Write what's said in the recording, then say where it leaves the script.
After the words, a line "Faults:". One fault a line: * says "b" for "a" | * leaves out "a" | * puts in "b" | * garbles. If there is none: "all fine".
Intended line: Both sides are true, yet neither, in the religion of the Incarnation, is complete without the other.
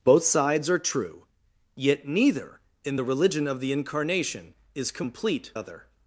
Both sides are true, yet neither, in the religion of the Incarnation, is complete other.
Faults:
* leaves out "without the"